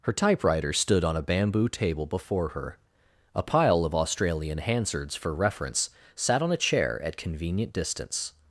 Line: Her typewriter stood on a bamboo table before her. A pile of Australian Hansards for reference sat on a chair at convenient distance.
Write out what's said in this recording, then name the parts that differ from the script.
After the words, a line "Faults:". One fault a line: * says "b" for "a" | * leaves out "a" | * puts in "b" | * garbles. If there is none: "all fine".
Her typewriter stood on a bamboo table before her. A pile of Australian Hansards for reference sat on a chair at convenient distance.
Faults:
all fine